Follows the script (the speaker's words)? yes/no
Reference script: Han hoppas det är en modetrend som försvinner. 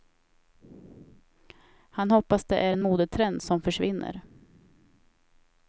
yes